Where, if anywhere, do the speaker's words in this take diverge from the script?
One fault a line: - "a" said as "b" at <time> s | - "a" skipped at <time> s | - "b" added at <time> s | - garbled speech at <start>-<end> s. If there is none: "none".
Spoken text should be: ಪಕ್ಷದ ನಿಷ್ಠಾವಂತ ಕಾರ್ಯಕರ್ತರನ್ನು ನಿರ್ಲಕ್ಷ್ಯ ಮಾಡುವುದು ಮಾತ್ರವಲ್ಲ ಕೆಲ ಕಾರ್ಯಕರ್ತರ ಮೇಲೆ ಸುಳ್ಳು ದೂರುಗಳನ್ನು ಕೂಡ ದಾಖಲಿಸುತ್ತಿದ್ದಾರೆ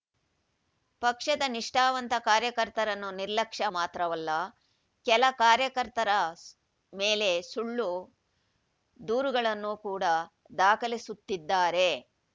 - "ಮಾಡುವುದು" skipped at 3.6 s